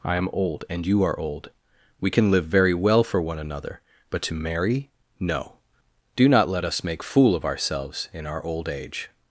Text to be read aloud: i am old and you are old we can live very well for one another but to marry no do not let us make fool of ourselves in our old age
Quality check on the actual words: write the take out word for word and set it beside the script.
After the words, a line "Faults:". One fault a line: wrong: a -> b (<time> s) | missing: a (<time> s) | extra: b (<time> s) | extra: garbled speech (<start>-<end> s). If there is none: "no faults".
i am old and you are old we can live very well for one another but to marry no do not let us make fool of ourselves in our old age
Faults:
no faults